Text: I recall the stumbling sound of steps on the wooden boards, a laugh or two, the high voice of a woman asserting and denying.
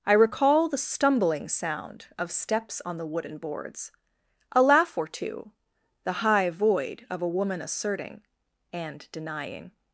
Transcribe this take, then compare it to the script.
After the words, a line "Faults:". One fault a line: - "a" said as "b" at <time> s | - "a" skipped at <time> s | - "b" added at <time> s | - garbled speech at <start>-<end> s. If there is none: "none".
I recall the stumbling sound of steps on the wooden boards, a laugh or two, the high void of a woman asserting and denying.
Faults:
- "voice" said as "void" at 6.5 s